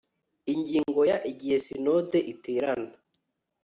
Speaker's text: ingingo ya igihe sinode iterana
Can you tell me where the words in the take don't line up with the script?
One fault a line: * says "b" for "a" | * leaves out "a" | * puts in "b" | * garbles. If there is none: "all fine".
all fine